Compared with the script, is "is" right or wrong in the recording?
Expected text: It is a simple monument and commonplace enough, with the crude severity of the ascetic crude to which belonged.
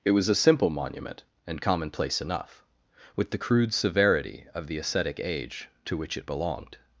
wrong